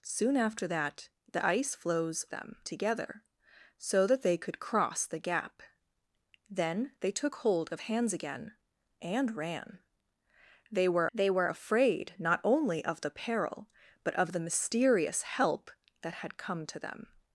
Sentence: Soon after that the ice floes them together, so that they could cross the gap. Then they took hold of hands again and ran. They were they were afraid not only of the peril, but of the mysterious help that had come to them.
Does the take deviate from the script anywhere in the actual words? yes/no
no